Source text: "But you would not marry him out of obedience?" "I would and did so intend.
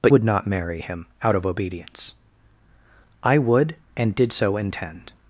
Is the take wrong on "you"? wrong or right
wrong